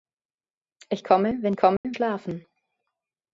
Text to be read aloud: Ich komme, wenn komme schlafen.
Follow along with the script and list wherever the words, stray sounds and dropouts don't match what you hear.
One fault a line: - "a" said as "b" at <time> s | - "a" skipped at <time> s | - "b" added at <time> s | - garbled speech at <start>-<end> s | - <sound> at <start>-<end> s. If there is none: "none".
- dropout at 1.8-1.8 s